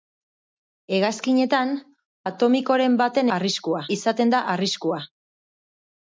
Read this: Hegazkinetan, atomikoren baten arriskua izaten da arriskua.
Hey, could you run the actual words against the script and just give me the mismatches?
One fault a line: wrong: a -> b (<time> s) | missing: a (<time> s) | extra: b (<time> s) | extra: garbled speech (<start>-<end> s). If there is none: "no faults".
no faults